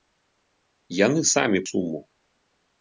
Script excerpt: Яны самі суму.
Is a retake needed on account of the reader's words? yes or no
no